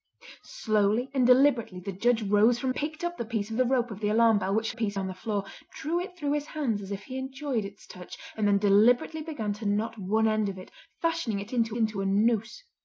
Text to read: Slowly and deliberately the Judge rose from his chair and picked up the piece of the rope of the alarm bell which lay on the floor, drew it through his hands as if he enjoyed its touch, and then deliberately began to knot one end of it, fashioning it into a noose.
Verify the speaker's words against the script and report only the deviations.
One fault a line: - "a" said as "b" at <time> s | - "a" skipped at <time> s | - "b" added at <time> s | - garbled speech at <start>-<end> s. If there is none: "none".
- "his chair and" skipped at 2.7 s
- "lay" said as "piece" at 4.7 s
- "into" added at 11.7 s